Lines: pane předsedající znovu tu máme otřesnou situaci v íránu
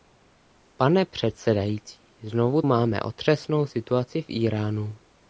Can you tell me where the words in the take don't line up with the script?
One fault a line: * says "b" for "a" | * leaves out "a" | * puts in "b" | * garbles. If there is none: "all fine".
* leaves out "tu"